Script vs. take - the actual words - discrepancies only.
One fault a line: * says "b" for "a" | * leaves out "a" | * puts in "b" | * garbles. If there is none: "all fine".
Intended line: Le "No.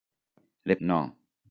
all fine